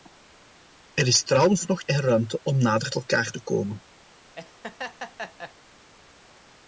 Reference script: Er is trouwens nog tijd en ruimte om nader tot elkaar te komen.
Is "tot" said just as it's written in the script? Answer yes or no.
no